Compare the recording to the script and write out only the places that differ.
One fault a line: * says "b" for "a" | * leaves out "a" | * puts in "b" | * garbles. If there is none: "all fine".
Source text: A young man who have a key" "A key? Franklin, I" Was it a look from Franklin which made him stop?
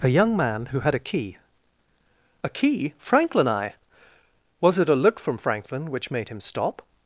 * says "had" for "have"